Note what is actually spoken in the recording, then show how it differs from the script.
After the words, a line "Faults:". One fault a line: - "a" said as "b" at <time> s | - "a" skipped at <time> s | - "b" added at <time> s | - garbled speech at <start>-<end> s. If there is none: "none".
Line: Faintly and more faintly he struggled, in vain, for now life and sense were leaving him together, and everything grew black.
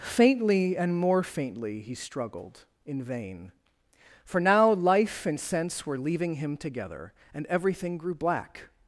Faintly and more faintly he struggled, in vain, for now life and sense were leaving him together, and everything grew black.
Faults:
none